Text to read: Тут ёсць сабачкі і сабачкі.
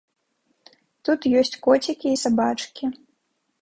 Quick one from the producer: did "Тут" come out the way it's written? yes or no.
yes